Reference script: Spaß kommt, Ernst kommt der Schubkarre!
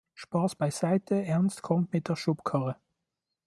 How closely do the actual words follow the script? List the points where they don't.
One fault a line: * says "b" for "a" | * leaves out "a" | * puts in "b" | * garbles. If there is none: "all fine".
* says "beiseite" for "kommt"
* puts in "mit"